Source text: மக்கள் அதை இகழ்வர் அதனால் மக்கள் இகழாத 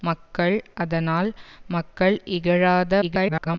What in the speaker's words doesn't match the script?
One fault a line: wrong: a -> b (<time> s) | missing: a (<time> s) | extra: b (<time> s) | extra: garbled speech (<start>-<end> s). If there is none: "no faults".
missing: அதை இகழ்வர் (0.6 s)
extra: garbled speech (3.0-3.6 s)